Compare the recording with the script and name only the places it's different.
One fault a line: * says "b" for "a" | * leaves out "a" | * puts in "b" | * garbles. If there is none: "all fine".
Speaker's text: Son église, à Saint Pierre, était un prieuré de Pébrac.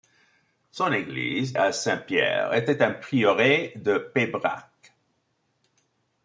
all fine